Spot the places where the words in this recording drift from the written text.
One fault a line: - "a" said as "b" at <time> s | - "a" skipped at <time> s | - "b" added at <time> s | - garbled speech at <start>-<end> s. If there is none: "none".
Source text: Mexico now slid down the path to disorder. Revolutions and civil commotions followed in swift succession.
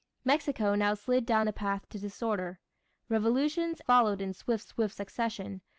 - "and civil commotions" skipped at 3.8 s
- "swift" added at 4.6 s